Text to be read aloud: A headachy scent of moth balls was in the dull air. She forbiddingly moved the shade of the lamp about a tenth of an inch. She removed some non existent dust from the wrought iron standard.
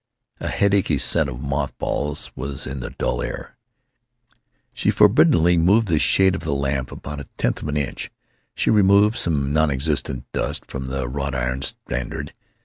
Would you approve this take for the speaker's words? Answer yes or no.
yes